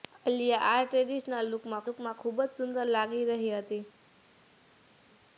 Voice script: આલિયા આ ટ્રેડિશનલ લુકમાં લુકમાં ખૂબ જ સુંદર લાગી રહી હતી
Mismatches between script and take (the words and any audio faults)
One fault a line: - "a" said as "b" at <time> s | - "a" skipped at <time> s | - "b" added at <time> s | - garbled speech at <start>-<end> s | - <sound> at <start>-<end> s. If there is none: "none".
none